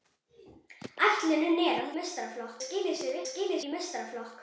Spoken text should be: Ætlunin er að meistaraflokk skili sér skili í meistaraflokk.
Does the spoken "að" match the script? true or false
true